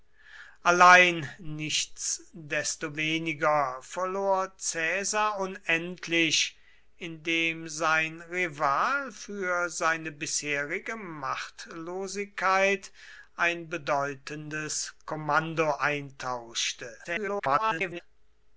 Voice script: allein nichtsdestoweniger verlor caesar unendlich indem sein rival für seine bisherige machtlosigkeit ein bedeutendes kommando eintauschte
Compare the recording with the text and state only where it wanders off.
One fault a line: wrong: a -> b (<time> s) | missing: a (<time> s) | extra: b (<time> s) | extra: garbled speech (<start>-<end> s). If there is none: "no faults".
extra: garbled speech (17.0-18.0 s)